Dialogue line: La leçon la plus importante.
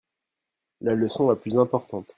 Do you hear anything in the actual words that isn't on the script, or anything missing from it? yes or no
no